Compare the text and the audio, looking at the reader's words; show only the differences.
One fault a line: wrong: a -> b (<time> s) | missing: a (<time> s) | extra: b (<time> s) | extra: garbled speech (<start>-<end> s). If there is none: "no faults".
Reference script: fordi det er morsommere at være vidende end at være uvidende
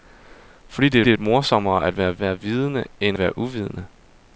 extra: det (1.0 s)
extra: være (2.2 s)
missing: at (3.2 s)